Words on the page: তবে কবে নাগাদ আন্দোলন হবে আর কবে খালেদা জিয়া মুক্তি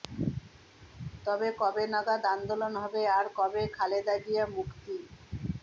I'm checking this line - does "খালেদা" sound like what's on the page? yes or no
yes